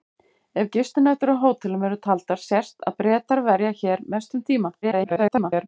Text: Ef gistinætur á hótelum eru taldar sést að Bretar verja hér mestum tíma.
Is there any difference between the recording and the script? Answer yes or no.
yes